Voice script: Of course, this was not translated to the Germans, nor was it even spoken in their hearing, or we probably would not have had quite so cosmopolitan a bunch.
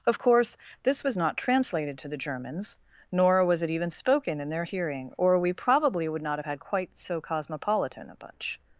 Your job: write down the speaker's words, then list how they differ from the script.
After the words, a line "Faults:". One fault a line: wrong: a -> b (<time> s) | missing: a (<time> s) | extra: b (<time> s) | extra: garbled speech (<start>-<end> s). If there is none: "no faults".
Of course, this was not translated to the Germans, nor was it even spoken in their hearing, or we probably would not have had quite so cosmopolitan a bunch.
Faults:
no faults